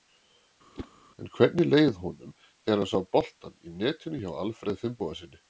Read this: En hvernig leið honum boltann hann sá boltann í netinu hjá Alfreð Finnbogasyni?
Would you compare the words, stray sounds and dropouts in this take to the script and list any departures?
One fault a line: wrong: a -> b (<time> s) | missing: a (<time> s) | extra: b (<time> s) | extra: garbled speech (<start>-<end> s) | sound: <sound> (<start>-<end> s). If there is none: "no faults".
sound: whoosh (0.7-0.9 s)
wrong: boltann -> þegar (2.4 s)